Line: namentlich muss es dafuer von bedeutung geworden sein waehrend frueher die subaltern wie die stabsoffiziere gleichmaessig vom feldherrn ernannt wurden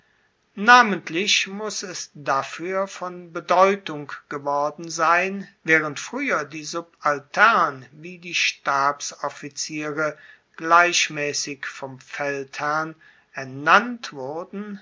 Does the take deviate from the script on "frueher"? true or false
false